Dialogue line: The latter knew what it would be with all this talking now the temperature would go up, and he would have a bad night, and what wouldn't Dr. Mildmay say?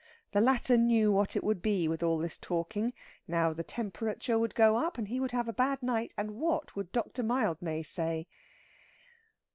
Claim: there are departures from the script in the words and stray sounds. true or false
true